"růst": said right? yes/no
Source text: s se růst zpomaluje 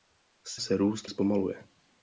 yes